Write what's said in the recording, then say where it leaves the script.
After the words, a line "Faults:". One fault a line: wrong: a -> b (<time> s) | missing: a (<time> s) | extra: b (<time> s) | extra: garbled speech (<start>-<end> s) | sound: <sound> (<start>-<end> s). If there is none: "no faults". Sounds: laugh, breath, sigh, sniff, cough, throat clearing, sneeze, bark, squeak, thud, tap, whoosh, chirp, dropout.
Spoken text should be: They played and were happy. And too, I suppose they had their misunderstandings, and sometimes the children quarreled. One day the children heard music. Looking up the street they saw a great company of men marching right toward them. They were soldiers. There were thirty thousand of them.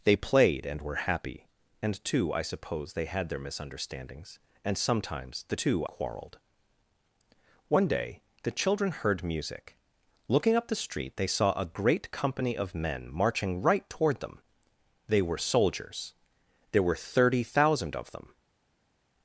They played and were happy. And too, I suppose they had their misunderstandings, and sometimes the too quarreled. One day the children heard music. Looking up the street they saw a great company of men marching right toward them. They were soldiers. There were thirty thousand of them.
Faults:
wrong: children -> too (5.6 s)